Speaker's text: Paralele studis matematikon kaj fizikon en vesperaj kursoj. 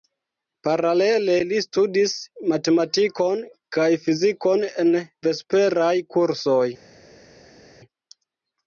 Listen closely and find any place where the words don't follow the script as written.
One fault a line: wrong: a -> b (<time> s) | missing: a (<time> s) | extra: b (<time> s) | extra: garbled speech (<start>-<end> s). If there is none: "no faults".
extra: li (1.5 s)